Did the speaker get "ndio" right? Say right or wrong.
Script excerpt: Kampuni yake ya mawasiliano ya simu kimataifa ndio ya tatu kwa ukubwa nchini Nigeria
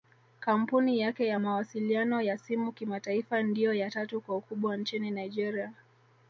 right